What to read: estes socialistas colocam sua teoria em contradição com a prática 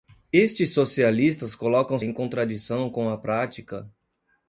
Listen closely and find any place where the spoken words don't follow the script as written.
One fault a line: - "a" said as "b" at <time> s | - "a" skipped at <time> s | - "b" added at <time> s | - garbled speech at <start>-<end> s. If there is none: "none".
- "sua teoria" skipped at 2.0 s